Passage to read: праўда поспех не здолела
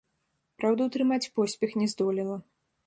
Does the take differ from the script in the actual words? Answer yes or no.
yes